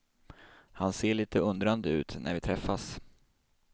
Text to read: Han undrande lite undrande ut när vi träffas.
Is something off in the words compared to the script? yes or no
yes